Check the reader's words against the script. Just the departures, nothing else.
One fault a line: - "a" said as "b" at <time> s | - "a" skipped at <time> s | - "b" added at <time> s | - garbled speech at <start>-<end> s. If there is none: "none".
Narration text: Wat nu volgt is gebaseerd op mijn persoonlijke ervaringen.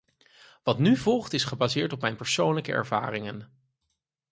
none